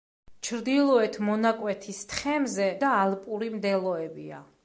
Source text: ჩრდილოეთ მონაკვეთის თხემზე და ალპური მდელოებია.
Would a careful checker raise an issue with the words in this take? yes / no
no